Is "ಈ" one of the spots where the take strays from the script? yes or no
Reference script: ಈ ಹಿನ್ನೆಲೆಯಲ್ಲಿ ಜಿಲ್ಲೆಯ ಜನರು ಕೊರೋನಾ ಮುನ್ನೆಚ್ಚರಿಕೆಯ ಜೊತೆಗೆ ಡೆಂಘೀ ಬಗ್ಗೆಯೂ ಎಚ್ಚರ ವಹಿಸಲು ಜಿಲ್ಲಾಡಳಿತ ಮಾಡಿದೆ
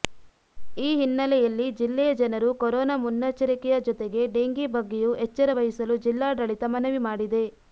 no